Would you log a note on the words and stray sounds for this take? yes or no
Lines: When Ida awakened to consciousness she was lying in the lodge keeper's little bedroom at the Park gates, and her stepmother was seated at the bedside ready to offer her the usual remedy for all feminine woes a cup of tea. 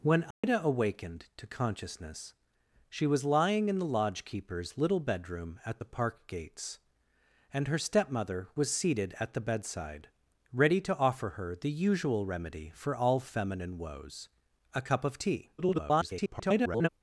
yes